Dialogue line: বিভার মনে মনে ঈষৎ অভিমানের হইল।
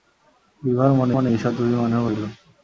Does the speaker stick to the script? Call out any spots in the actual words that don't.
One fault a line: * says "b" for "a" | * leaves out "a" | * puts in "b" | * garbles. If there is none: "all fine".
all fine